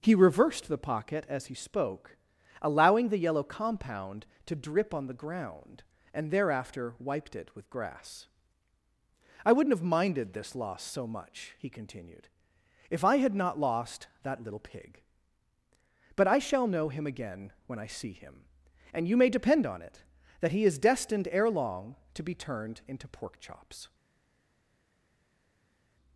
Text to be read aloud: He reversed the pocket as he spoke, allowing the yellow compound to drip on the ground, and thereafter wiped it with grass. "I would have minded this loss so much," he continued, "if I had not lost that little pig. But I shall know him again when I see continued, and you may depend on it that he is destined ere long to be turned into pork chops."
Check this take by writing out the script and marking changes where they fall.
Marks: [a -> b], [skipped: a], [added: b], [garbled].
He reversed the pocket as he spoke, allowing the yellow compound to drip on the ground, and thereafter wiped it with grass. "I [would -> wouldn't] have minded this loss so much," he continued, "if I had not lost that little pig. But I shall know him again when I see [continued, -> him] and you may depend on it that he is destined ere long to be turned into pork chops."